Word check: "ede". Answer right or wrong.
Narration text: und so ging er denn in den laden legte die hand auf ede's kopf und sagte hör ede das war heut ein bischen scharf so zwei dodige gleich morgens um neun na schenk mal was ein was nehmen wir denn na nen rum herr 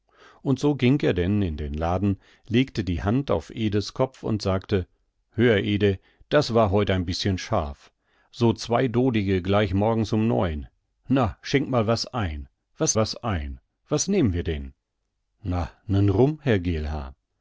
right